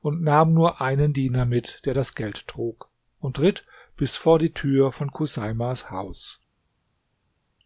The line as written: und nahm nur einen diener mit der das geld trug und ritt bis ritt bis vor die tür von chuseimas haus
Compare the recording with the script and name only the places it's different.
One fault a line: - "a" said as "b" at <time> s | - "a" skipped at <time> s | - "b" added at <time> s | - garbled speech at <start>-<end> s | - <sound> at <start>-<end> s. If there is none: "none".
- "ritt bis" skipped at 4.2 s